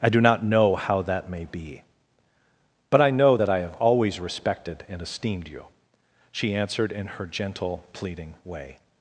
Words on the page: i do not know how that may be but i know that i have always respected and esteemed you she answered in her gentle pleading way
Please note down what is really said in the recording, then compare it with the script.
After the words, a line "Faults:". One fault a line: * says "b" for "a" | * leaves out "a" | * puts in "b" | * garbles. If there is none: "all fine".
i do not know how that may be but i know that i have always respected and esteemed you she answered in her gentle pleading way
Faults:
all fine